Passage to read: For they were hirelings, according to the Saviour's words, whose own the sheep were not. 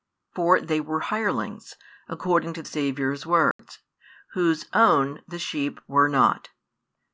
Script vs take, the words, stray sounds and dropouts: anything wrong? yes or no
yes